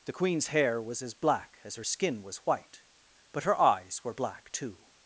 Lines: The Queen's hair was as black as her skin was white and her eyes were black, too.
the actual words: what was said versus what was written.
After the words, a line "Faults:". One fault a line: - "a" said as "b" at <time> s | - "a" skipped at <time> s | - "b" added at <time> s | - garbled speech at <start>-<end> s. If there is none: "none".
The Queen's hair was as black as her skin was white but her eyes were black, too.
Faults:
- "and" said as "but" at 3.3 s